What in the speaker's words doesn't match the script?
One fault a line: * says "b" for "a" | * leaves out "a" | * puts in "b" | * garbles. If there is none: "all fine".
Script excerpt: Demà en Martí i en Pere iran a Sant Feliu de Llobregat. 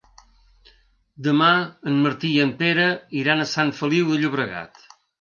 all fine